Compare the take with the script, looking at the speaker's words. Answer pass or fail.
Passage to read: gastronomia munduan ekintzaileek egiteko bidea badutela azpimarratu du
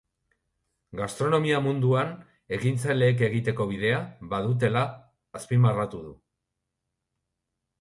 pass